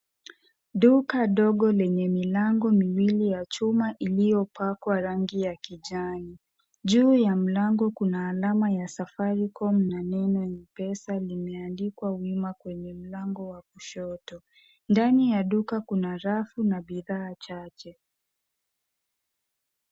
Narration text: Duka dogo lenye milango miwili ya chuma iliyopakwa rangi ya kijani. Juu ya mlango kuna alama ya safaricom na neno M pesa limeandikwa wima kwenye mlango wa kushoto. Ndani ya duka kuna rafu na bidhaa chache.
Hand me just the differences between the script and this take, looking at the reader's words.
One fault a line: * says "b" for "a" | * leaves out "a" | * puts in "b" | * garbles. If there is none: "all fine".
all fine